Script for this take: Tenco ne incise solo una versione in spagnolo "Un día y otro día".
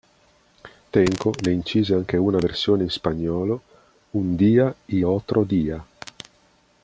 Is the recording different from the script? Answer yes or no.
yes